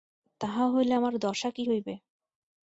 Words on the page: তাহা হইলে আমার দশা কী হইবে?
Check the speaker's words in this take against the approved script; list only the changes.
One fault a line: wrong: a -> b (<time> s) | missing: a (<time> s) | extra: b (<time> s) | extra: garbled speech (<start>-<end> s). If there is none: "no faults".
no faults